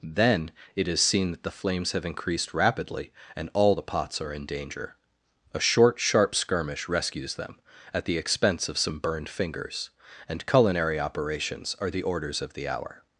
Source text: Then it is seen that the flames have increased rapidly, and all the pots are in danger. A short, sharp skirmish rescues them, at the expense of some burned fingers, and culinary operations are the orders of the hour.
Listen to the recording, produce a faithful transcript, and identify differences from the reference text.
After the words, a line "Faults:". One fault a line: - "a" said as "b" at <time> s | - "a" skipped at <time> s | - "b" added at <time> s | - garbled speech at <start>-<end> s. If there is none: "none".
Then it is seen that the flames have increased rapidly, and all the pots are in danger. A short, sharp skirmish rescues them, at the expense of some burned fingers, and culinary operations are the orders of the hour.
Faults:
none